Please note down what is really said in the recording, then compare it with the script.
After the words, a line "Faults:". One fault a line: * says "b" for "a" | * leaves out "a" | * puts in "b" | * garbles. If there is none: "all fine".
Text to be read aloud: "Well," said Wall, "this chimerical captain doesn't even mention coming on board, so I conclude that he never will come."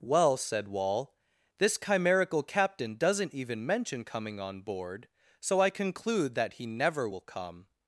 "Well," said Wall, "this chimerical captain doesn't even mention coming on board, so I conclude that he never will come."
Faults:
all fine